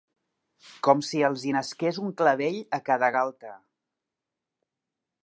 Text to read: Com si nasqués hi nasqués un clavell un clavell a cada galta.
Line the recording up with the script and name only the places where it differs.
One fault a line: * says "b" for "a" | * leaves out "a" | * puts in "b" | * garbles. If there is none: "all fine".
* says "els" for "nasqués"
* leaves out "un clavell"